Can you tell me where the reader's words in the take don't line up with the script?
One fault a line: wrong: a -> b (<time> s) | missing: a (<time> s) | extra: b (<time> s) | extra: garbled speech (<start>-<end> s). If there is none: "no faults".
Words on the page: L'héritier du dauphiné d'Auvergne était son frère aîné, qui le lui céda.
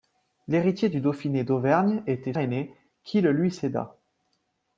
missing: son frère (2.3 s)